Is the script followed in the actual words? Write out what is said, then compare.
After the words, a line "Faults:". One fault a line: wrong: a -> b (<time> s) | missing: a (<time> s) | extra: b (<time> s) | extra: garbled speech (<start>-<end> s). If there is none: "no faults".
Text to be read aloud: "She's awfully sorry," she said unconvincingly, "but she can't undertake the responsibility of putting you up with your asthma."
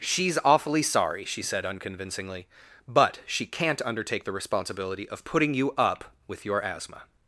"She's awfully sorry," she said unconvincingly, "but she can't undertake the responsibility of putting you up with your asthma."
Faults:
no faults